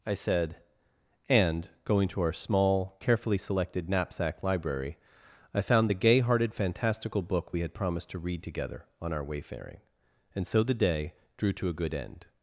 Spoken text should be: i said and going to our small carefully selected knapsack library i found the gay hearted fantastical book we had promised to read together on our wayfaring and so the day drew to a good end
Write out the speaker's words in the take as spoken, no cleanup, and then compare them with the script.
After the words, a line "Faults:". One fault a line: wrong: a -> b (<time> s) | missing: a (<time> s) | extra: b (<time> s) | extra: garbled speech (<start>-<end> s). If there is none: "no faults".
i said and going to our small carefully selected knapsack library i found the gay hearted fantastical book we had promised to read together on our wayfaring and so the day drew to a good end
Faults:
no faults